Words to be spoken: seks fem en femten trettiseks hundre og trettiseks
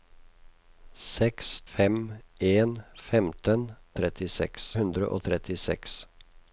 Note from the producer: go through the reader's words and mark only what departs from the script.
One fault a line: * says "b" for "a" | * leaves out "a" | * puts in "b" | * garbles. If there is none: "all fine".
all fine